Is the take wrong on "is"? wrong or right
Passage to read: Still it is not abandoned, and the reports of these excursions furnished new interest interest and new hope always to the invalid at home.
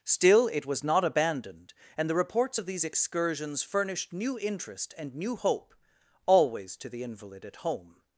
wrong